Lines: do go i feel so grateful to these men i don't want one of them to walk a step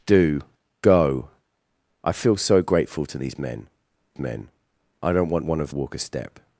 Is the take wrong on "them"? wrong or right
wrong